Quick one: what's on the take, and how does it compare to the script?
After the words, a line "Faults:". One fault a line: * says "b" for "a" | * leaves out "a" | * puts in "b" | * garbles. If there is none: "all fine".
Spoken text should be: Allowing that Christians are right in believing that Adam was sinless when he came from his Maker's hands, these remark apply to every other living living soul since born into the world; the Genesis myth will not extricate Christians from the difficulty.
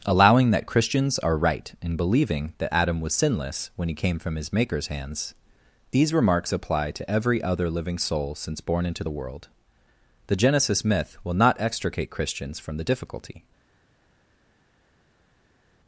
Allowing that Christians are right in believing that Adam was sinless when he came from his Maker's hands, these remarks apply to every other living soul since born into the world; the Genesis myth will not extricate Christians from the difficulty.
Faults:
* says "remarks" for "remark"
* leaves out "living"